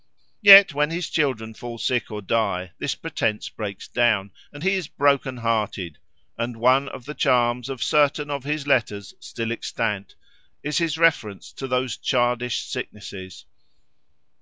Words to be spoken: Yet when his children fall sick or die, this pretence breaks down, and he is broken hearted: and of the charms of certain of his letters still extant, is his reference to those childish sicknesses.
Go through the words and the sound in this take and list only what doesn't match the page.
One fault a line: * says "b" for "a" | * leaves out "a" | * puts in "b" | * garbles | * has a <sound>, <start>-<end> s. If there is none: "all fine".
* puts in "one"